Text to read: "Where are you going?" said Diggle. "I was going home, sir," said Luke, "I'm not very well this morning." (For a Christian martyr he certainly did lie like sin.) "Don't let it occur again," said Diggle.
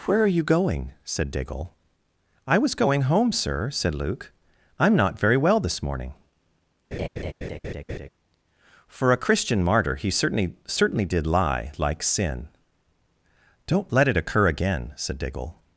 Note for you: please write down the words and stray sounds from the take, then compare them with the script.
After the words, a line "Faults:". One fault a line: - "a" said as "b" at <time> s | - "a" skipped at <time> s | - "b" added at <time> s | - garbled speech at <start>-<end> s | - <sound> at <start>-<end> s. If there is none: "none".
"Where are you going?" said Diggle. "I was going home, sir," said Luke, "I'm not very well this morning." (For a Christian martyr he certainly certainly did lie like sin.) "Don't let it occur again," said Diggle.
Faults:
- laugh at 6.9-8.1 s
- "certainly" added at 10.7 s